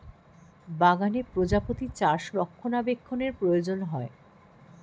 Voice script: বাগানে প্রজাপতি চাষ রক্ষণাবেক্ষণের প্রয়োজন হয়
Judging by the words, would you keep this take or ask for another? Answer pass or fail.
pass